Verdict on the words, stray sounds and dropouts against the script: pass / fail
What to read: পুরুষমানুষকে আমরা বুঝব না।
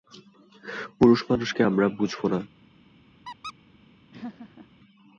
fail